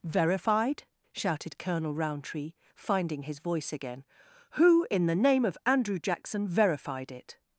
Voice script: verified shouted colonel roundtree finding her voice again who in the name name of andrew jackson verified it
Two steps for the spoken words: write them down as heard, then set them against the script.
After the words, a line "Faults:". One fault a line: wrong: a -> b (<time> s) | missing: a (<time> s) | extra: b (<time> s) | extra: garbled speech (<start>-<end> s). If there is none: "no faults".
verified shouted colonel roundtree finding his voice again who in the name of andrew jackson verified it
Faults:
wrong: her -> his (3.2 s)
missing: name (5.4 s)